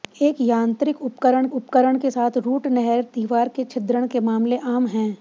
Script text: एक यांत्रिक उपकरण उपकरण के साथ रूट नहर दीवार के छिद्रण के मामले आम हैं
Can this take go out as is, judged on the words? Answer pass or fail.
pass